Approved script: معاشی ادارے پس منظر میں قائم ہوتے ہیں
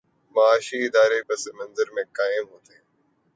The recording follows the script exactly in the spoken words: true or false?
true